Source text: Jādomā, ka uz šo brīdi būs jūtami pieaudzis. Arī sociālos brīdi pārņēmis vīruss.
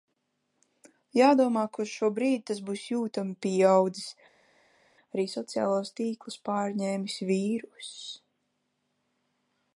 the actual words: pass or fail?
fail